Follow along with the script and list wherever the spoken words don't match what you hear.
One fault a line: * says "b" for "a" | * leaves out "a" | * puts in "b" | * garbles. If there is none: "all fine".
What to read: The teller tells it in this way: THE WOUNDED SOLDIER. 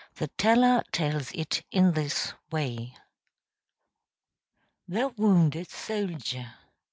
all fine